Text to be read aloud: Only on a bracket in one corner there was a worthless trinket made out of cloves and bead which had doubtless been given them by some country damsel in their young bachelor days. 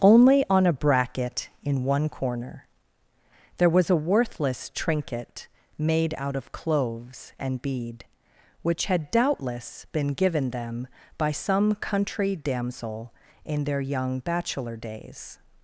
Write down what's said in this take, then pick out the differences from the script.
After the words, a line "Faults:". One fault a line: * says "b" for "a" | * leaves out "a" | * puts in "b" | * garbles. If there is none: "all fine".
Only on a bracket in one corner there was a worthless trinket made out of cloves and bead which had doubtless been given them by some country damsel in their young bachelor days.
Faults:
all fine